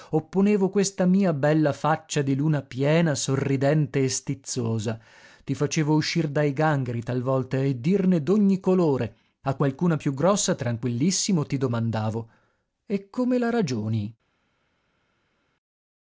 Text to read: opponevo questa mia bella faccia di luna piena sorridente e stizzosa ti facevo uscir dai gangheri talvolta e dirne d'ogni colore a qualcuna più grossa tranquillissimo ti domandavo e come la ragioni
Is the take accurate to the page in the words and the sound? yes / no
yes